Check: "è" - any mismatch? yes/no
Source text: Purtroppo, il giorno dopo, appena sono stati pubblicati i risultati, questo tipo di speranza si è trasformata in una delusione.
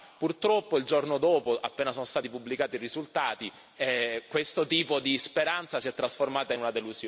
no